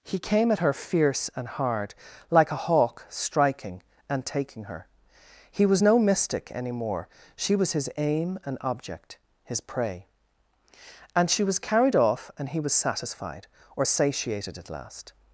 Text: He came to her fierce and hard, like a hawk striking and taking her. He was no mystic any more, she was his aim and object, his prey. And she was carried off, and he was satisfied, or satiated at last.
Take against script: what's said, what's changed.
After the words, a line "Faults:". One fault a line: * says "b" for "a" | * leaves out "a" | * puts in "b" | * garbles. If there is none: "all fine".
He came at her fierce and hard, like a hawk striking and taking her. He was no mystic any more, she was his aim and object, his prey. And she was carried off, and he was satisfied, or satiated at last.
Faults:
* says "at" for "to"